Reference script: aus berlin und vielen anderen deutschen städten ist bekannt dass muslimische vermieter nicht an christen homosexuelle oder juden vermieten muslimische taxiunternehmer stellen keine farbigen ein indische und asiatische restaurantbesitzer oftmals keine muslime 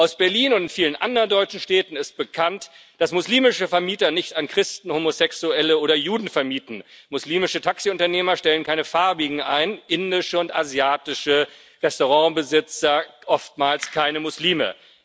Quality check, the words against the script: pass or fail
pass